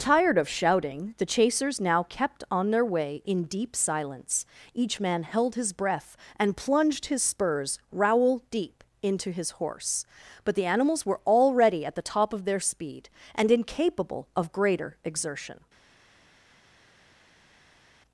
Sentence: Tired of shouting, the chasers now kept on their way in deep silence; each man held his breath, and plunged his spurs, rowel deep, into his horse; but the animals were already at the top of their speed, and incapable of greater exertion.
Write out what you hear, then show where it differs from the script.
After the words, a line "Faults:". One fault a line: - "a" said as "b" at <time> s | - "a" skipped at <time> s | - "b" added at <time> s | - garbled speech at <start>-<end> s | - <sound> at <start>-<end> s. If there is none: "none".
Tired of shouting, the chasers now kept on their way in deep silence; each man held his breath, and plunged his spurs, rowel deep, into his horse; but the animals were already at the top of their speed, and incapable of greater exertion.
Faults:
none